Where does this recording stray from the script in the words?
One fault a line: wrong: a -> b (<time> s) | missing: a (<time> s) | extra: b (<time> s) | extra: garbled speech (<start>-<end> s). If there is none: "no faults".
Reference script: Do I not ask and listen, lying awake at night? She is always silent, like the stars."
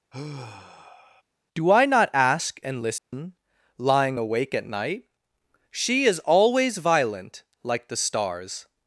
wrong: silent -> violent (6.8 s)